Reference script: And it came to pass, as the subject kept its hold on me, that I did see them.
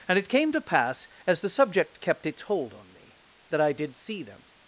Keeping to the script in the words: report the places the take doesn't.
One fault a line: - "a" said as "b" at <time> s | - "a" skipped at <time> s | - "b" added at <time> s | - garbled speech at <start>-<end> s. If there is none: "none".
none